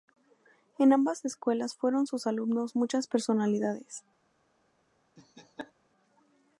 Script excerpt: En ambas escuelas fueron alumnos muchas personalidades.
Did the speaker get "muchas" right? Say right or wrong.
right